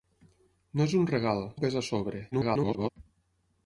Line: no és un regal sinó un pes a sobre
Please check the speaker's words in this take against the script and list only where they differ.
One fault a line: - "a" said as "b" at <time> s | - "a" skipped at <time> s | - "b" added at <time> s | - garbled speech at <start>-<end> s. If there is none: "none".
- "sinó" skipped at 1.4 s
- garbled speech at 2.3-2.9 s